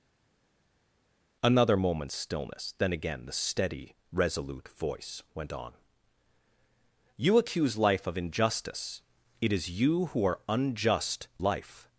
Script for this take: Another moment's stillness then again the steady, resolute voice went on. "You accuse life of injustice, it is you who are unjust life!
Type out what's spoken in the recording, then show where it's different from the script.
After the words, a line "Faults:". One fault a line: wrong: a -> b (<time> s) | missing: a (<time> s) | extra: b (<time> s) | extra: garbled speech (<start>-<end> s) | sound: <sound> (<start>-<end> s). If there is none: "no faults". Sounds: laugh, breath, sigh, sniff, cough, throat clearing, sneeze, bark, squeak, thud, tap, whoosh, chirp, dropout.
Another moment's stillness then again the steady, resolute voice went on. "You accuse life of injustice, it is you who are unjust life!
Faults:
no faults